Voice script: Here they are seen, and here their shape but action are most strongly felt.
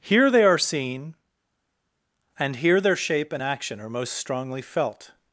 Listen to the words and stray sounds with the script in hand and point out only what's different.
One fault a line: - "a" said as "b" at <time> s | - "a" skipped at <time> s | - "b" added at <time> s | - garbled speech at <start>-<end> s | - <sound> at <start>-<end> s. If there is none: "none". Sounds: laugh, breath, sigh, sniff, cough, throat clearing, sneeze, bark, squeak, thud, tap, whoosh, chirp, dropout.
- "but" said as "and" at 3.3 s